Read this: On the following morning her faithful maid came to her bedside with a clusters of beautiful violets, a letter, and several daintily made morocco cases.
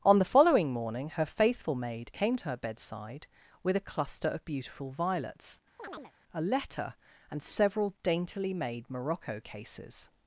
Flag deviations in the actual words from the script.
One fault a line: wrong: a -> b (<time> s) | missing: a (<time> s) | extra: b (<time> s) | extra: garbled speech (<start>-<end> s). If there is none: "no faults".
wrong: clusters -> cluster (3.8 s)